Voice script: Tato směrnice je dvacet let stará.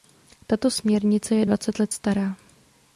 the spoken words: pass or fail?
pass